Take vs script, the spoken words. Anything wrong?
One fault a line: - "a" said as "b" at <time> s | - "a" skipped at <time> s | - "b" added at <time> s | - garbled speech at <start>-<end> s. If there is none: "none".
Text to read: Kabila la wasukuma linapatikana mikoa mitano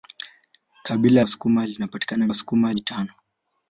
- "la" skipped at 1.2 s
- "mikoa" said as "wasukuma" at 2.3 s